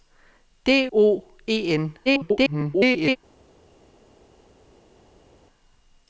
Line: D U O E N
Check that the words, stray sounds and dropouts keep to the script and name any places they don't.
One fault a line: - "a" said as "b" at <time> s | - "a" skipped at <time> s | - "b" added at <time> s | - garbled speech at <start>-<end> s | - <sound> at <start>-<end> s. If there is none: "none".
- "U" skipped at 0.8 s
- garbled speech at 2.1-3.2 s